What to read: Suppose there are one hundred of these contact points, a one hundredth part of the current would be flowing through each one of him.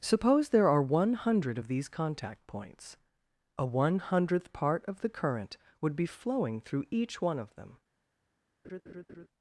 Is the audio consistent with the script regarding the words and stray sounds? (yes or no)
no